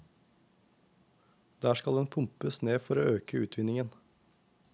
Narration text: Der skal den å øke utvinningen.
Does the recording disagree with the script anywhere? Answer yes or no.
yes